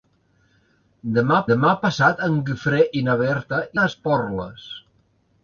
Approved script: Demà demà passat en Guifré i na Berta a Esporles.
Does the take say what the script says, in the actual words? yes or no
yes